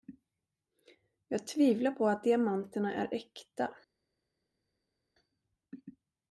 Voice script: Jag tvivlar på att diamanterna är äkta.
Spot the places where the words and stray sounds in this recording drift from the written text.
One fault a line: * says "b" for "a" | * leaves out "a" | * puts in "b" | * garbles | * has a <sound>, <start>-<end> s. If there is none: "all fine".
all fine